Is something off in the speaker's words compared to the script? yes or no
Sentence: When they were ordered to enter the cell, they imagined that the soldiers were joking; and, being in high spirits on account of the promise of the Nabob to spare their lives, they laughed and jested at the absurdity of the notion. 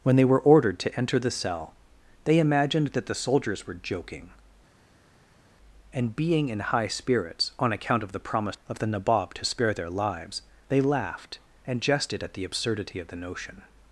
no